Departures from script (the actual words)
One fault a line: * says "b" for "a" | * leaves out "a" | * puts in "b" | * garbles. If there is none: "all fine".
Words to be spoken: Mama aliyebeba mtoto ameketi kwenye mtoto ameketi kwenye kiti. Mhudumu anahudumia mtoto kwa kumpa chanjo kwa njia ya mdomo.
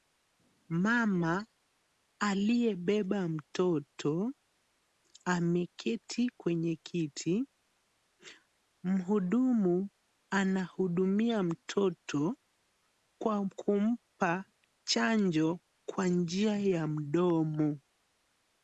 * leaves out "mtoto ameketi kwenye"